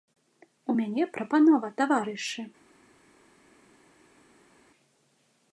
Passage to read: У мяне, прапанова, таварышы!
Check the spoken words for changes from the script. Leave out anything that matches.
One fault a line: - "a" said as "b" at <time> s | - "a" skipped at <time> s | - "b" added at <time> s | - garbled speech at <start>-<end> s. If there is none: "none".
none